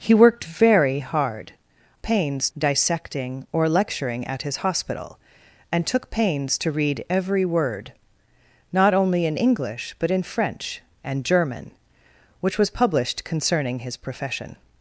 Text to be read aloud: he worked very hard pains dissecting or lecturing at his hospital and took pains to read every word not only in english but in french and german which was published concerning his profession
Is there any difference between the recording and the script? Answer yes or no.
no